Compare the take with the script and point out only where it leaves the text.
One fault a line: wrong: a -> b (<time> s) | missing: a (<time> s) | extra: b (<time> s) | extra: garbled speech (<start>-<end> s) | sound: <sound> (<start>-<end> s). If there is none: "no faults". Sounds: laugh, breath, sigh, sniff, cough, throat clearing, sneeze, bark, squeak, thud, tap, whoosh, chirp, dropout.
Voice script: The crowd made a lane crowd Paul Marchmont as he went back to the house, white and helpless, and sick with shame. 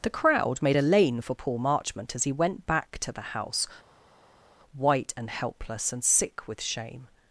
wrong: crowd -> for (1.2 s)